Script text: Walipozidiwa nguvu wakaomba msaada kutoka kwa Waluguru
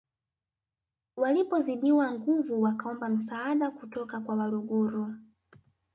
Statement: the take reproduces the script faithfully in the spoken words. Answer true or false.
true